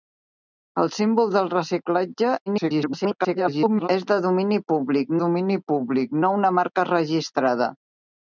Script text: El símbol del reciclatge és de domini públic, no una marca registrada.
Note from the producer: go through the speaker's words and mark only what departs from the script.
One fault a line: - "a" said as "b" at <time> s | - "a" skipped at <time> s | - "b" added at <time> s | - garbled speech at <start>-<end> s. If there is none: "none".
- garbled speech at 2.5-3.9 s
- "domini públic" added at 5.2 s